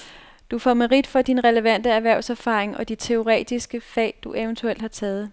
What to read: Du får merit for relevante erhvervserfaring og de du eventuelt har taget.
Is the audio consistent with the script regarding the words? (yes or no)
no